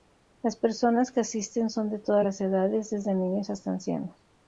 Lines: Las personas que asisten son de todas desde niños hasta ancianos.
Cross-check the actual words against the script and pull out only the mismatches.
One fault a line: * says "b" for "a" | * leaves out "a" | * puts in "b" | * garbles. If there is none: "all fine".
* puts in "las edades"